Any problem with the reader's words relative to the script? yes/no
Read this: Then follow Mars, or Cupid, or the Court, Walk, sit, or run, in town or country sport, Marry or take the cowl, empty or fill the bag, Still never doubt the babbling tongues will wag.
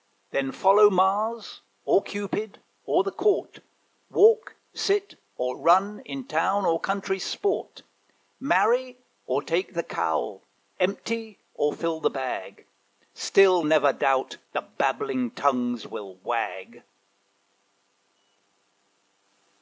no